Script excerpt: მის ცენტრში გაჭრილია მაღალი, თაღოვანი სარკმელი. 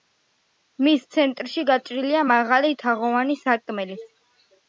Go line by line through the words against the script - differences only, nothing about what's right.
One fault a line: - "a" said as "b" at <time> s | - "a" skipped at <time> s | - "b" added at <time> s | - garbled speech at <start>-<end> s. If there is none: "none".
none